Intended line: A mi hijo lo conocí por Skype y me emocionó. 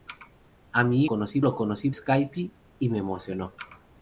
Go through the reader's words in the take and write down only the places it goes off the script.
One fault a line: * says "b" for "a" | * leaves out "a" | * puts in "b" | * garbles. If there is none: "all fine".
* says "conocí" for "hijo"
* leaves out "por"